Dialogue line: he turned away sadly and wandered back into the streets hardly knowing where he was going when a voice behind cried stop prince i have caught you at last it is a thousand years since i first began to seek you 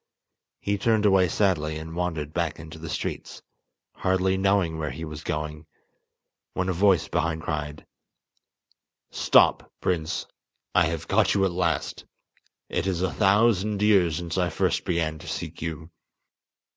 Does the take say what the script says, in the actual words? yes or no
yes